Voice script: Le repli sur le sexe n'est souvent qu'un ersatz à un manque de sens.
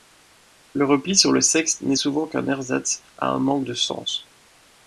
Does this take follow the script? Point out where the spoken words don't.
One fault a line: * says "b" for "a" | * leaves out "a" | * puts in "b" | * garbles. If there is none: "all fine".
all fine